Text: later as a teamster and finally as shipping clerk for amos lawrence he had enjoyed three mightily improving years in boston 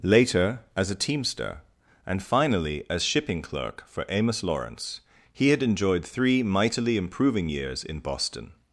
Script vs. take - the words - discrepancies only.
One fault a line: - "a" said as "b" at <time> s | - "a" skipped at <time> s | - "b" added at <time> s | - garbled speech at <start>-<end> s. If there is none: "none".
none